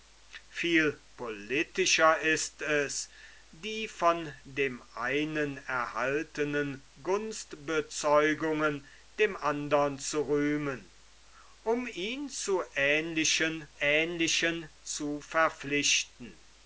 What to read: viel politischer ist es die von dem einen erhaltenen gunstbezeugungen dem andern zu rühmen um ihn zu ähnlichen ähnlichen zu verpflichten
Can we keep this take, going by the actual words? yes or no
yes